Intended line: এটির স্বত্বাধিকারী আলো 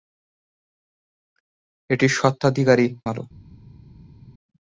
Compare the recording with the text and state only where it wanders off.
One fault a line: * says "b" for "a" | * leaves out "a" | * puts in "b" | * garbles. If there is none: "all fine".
all fine